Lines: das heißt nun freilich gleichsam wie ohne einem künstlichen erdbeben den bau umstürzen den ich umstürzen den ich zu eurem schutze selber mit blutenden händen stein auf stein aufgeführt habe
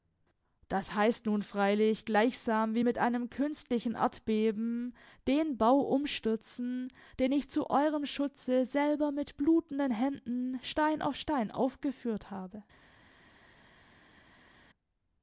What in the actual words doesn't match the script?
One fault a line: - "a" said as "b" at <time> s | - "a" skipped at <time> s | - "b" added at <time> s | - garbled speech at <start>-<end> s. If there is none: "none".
- "ohne" said as "mit" at 2.8 s
- "umstürzen den ich" skipped at 7.5 s